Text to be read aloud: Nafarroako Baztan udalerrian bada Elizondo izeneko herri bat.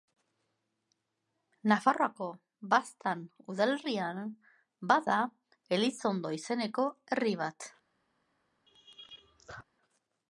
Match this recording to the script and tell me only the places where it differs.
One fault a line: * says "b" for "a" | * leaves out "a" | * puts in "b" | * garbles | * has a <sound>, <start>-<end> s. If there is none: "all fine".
* has a laugh, 8.7-9.6 s